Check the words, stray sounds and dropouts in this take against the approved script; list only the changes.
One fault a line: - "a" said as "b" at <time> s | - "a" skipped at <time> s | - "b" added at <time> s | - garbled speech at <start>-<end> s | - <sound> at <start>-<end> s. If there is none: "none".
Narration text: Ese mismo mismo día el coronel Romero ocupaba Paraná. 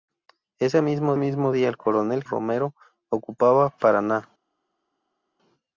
none